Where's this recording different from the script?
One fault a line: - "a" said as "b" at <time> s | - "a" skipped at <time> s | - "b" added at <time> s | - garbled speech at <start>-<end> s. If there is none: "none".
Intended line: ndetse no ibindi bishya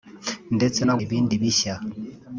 none